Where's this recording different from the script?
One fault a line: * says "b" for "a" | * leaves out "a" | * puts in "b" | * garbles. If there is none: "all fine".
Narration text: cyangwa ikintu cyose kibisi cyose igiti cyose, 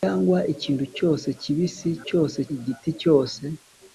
all fine